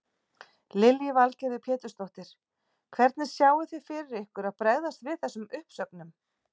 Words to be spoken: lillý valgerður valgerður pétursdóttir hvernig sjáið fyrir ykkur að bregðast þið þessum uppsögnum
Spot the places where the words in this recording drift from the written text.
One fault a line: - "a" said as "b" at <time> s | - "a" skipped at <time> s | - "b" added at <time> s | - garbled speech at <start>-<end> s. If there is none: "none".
- "valgerður" skipped at 1.6 s
- "þið" added at 3.8 s
- "þið" said as "við" at 5.1 s